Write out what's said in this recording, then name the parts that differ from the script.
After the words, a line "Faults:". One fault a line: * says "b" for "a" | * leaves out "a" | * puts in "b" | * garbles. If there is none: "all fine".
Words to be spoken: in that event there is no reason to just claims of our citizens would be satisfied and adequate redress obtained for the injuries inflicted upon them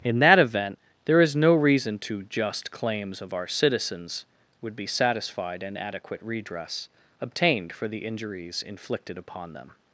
in that event there is no reason to just claims of our citizens would be satisfied and adequate redress obtained for the injuries inflicted upon them
Faults:
all fine